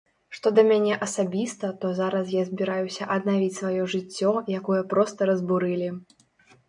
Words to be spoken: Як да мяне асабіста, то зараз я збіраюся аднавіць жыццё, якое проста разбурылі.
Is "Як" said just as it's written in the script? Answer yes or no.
no